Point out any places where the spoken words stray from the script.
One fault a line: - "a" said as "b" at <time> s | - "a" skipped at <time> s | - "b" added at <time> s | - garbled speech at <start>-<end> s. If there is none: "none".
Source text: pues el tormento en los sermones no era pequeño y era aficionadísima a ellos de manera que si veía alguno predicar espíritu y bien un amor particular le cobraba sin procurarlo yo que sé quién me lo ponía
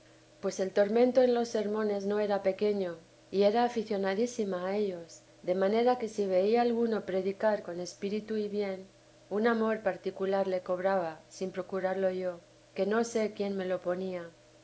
- "con" added at 7.6 s
- "no" added at 12.9 s